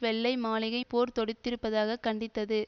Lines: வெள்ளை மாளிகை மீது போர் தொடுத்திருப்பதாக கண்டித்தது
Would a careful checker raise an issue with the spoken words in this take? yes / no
yes